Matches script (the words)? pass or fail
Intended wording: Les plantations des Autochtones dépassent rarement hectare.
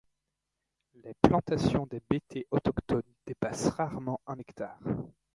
fail